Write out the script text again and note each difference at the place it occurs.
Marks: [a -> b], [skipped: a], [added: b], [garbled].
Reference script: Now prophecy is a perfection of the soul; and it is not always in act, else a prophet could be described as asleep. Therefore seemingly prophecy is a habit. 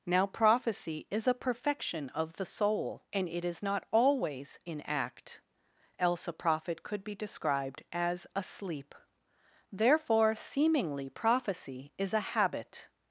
Now prophecy is a perfection of the soul; and it is not always in act, else a prophet could be described as asleep. Therefore seemingly prophecy is a habit.